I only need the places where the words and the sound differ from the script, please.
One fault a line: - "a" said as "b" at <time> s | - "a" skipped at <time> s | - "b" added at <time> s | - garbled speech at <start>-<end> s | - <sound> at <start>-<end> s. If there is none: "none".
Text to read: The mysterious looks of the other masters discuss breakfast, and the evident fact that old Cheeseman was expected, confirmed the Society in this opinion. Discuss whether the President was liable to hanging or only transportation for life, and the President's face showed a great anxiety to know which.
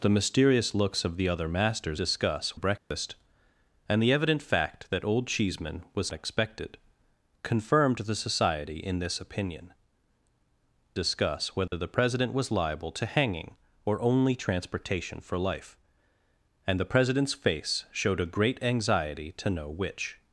- dropout at 2.8-2.9 s
- dropout at 11.7-11.7 s